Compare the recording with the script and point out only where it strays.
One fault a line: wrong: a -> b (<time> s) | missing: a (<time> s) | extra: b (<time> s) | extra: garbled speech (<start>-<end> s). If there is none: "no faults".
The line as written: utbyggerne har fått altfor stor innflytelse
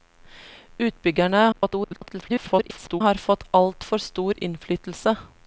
extra: garbled speech (1.5-3.0 s)